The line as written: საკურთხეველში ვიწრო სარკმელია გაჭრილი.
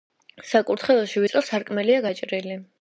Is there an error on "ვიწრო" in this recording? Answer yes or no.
no